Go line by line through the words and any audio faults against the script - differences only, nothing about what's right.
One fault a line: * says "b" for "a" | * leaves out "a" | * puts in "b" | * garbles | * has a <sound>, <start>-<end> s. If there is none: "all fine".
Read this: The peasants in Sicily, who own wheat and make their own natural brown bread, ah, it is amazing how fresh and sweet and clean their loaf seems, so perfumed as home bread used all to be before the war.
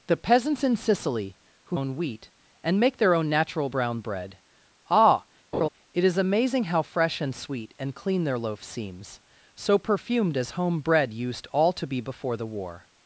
* has a laugh, 5.5-5.7 s